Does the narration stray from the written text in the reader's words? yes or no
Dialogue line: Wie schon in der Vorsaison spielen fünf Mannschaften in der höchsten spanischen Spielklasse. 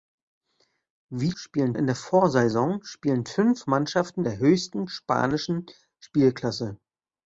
yes